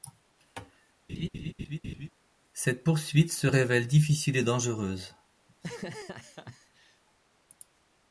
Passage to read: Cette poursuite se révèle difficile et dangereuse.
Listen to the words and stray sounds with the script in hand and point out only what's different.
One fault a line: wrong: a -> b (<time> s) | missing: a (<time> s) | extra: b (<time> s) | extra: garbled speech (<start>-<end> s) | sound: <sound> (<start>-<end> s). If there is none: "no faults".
sound: laugh (1.1-2.1 s)
sound: laugh (5.5-7.0 s)